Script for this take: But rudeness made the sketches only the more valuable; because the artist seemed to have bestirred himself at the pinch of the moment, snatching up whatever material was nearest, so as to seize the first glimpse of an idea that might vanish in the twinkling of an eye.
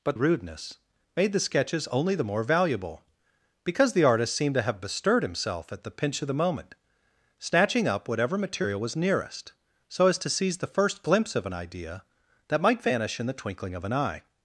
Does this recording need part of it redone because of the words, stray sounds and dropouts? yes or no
no